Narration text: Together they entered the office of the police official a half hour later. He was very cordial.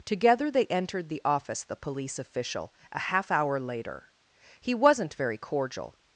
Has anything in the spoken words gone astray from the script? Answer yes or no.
yes